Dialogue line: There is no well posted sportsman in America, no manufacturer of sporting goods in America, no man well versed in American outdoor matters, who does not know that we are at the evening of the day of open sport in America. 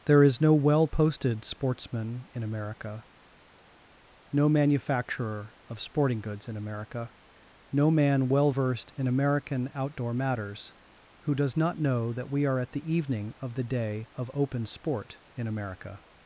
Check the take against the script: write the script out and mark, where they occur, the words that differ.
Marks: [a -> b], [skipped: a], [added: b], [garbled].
There is no well posted sportsman in America, no manufacturer of sporting goods in America, no man well versed in American outdoor matters, who does not know that we are at the evening of the day of open sport in America.